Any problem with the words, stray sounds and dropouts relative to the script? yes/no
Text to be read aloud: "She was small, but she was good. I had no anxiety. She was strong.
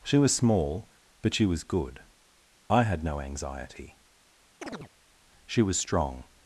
yes